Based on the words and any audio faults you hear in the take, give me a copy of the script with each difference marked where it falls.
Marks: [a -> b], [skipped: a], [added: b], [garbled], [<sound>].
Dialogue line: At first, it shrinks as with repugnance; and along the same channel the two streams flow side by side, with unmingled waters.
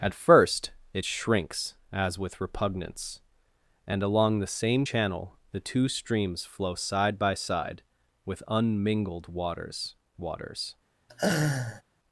At first, it shrinks as with repugnance; and along the same channel the two streams flow side by side, with unmingled waters. [added: waters] [laugh]